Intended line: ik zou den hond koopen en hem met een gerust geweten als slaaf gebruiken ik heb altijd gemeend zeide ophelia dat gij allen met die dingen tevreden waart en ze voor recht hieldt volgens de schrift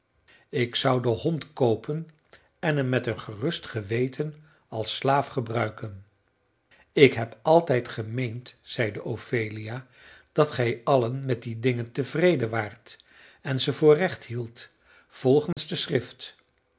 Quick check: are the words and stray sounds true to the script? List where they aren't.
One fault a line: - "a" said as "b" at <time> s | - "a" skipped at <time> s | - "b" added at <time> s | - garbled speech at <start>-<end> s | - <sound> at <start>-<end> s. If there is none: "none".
- dropout at 15.5-15.6 s